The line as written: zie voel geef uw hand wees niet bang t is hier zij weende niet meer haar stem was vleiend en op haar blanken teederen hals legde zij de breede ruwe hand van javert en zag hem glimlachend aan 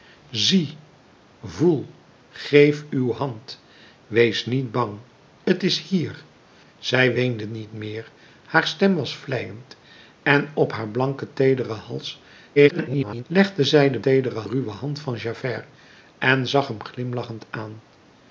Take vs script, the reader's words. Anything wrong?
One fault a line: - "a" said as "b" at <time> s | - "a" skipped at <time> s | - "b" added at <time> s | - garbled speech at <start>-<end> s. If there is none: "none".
- garbled speech at 12.6-13.2 s
- "breede" said as "teederen" at 14.0 s